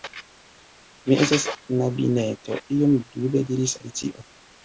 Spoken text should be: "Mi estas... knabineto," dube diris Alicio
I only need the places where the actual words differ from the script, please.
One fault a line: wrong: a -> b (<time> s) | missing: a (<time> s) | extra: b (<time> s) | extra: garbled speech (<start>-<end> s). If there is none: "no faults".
extra: iom (2.8 s)